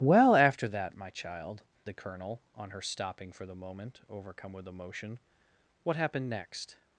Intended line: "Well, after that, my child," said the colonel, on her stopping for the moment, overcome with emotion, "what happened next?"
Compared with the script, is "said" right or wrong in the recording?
wrong